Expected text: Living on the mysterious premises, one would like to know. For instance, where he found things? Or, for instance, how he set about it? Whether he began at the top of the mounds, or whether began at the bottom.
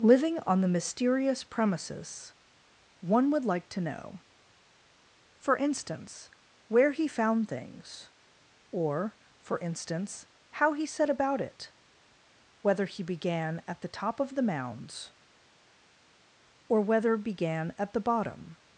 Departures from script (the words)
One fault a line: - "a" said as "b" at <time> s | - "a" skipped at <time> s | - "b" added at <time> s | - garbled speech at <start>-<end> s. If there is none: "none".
none